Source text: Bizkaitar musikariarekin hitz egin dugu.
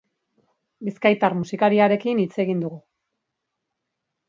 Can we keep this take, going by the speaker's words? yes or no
yes